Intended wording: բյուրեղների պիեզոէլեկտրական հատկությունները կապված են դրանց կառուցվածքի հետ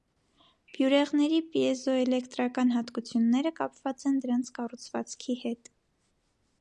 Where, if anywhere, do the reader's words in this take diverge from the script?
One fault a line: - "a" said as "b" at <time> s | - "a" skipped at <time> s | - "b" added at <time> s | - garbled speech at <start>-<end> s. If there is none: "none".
none